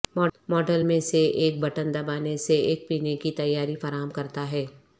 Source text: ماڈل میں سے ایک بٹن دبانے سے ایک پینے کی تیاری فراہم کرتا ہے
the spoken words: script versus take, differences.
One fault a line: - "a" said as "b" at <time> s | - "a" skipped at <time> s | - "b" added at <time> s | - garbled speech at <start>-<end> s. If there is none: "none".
none